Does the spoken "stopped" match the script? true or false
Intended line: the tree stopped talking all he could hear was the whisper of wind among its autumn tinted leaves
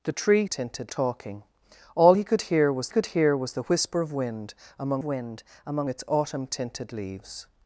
false